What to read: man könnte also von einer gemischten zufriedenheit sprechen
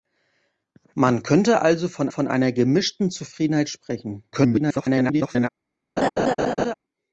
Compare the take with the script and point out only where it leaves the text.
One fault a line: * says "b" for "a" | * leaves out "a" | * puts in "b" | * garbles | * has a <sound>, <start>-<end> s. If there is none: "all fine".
* puts in "von"
* garbles
* has a laugh, 6.0-6.7 s